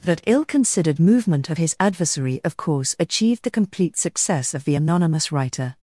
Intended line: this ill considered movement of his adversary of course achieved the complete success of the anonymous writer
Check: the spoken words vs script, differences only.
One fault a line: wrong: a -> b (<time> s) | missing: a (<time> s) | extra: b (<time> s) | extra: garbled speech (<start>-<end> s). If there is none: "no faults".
wrong: this -> that (0.0 s)